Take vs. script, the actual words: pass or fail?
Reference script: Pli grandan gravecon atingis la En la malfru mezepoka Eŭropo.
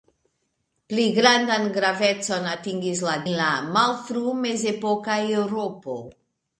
pass